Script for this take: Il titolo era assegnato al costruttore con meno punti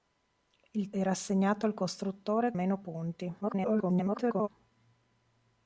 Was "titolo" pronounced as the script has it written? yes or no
no